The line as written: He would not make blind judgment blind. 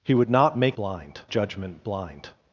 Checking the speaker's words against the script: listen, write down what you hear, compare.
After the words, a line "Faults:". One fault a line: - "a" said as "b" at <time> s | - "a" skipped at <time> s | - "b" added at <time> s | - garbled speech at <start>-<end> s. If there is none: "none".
He would not make blind judgment blind.
Faults:
none